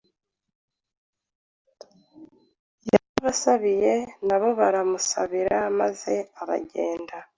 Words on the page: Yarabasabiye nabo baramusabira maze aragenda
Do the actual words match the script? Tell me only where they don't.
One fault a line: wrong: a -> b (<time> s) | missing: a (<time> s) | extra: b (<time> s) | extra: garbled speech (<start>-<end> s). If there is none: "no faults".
no faults